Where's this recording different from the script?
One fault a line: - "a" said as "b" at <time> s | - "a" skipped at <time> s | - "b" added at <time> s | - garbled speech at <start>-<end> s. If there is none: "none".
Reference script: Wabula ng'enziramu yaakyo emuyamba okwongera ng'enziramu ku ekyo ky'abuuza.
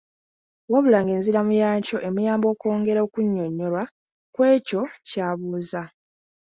- "ng'enziramu" said as "okunnyonnyolwa" at 3.1 s